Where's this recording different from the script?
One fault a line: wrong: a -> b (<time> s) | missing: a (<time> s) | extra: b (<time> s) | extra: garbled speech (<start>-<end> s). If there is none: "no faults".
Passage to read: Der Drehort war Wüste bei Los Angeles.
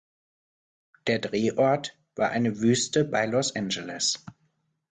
extra: eine (2.3 s)